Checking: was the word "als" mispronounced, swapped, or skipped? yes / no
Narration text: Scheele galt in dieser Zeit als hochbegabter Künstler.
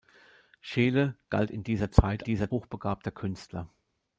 yes